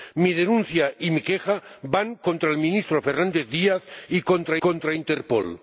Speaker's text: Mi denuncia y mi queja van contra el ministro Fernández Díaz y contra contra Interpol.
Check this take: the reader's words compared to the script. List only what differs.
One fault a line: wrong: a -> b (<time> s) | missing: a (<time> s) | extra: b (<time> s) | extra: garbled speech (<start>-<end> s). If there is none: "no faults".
no faults